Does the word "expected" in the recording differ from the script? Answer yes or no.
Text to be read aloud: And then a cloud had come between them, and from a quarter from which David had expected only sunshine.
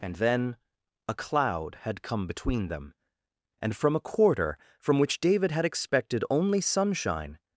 no